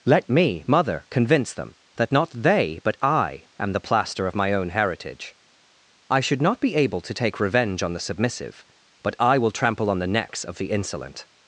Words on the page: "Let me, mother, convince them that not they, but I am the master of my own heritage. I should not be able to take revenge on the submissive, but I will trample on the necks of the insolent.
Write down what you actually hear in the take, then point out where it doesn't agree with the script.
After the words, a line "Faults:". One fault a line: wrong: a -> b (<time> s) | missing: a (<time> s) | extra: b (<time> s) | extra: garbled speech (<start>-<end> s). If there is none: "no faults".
"Let me, mother, convince them that not they, but I am the plaster of my own heritage. I should not be able to take revenge on the submissive, but I will trample on the necks of the insolent.
Faults:
wrong: master -> plaster (3.8 s)